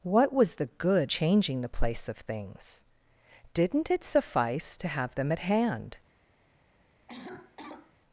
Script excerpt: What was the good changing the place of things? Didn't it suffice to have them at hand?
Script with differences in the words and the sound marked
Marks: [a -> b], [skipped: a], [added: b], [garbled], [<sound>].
What was the good changing the place of things? Didn't it suffice to have them at hand? [cough]